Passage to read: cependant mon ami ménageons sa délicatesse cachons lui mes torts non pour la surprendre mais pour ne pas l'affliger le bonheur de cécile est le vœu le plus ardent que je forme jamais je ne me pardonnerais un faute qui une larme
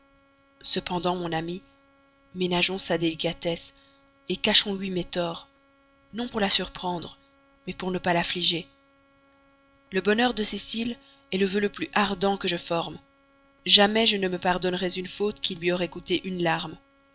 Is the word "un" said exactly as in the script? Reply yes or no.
no